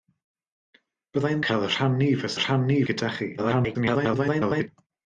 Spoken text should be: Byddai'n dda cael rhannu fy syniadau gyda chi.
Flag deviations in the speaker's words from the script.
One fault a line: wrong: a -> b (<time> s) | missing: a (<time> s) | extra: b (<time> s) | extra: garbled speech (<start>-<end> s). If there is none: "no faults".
missing: dda (1.4 s)
wrong: syniadau -> rhannu (2.4 s)
extra: garbled speech (3.4-4.7 s)